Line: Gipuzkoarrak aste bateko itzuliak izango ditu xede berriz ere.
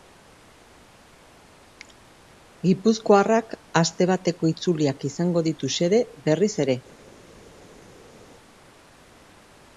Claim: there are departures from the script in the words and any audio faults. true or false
false